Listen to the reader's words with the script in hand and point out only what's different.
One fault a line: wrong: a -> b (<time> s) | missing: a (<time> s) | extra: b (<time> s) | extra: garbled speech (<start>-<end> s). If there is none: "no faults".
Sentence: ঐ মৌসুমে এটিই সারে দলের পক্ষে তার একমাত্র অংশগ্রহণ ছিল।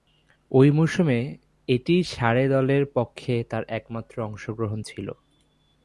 no faults